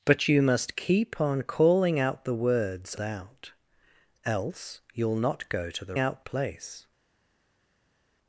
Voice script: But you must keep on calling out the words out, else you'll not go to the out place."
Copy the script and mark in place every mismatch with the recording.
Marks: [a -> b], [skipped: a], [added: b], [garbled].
But you must keep on calling out the words out, else you'll not go to the out place."